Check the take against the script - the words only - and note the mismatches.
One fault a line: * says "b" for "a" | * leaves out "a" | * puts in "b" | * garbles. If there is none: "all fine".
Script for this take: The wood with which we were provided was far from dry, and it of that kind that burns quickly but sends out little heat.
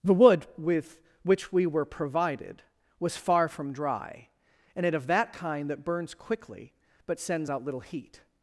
all fine